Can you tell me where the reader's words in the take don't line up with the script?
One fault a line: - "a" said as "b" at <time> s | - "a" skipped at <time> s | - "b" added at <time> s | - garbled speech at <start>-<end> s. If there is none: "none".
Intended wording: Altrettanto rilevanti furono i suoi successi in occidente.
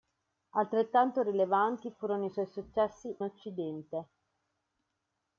- "in" skipped at 3.1 s